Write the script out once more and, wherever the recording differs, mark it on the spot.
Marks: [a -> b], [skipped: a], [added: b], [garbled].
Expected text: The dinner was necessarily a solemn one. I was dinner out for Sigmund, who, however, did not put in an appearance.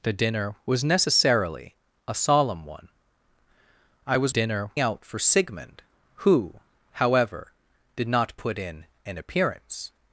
The dinner was necessarily a solemn one. I was dinner out for Sigmund, who, however, did not put in an appearance.